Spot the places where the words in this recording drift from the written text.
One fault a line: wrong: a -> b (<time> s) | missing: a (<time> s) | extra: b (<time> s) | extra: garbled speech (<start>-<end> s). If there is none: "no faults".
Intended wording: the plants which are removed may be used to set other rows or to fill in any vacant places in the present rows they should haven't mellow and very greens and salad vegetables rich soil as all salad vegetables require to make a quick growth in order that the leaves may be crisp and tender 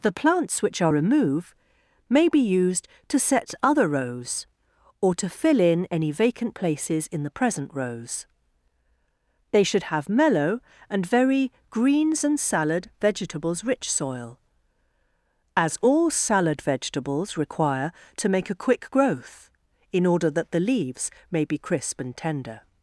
wrong: haven't -> have (9.8 s)